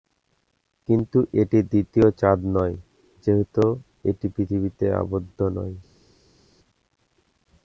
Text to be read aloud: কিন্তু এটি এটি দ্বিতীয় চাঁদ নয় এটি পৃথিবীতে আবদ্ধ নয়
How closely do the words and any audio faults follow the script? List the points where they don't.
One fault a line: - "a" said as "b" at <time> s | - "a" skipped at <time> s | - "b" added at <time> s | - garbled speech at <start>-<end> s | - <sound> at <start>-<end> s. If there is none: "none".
- "এটি" skipped at 1.6 s
- "যেহেতু" added at 3.3 s